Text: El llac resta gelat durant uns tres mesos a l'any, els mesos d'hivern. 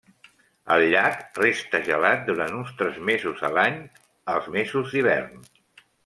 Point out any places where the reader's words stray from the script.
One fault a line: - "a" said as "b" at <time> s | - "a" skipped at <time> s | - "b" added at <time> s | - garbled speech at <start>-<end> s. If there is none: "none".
none